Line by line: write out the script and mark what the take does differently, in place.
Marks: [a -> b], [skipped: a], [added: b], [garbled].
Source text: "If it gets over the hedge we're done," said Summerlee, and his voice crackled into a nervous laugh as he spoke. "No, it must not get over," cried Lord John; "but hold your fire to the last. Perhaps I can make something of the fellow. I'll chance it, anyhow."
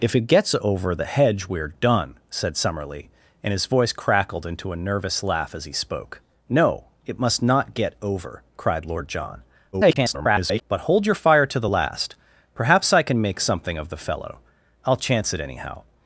"If it gets over the hedge we're done," said Summerlee, and his voice crackled into a nervous laugh as he spoke. "No, it must not get over," cried Lord John; [garbled] "but hold your fire to the last. Perhaps I can make something of the fellow. I'll chance it, anyhow."